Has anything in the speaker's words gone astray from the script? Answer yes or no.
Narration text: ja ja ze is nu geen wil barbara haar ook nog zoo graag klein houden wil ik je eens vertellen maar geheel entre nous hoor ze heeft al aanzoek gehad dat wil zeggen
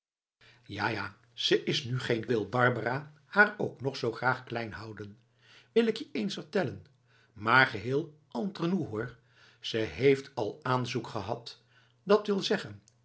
no